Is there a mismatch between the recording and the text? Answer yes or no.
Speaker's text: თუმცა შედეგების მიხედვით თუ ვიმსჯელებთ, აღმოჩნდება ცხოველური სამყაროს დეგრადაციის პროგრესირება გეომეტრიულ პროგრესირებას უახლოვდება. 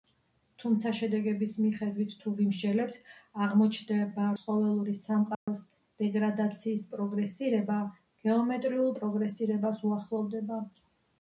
no